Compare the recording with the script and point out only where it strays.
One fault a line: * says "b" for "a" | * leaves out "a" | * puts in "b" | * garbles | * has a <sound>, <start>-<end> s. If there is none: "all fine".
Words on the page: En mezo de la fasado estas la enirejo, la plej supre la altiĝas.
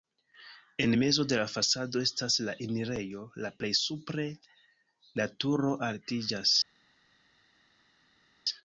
* puts in "turo"